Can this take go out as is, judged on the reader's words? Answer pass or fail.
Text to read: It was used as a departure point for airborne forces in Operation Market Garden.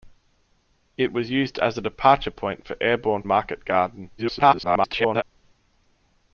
fail